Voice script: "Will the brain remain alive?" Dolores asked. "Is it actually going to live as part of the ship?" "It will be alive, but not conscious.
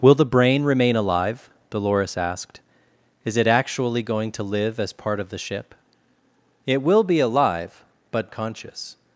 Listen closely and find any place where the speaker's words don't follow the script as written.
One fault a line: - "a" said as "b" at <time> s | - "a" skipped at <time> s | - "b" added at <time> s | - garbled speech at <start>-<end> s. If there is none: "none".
- "not" skipped at 8.3 s